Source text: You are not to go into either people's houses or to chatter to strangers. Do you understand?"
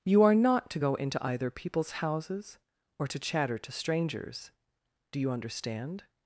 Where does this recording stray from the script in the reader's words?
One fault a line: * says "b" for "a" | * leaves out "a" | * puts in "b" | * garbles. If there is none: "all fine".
all fine